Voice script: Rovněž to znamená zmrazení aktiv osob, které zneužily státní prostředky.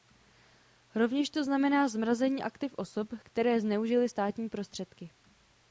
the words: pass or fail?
pass